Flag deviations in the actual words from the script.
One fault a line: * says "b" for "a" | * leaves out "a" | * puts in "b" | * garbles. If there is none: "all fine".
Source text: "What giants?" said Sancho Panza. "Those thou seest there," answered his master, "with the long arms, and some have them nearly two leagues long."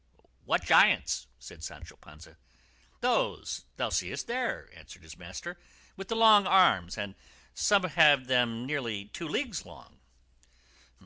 all fine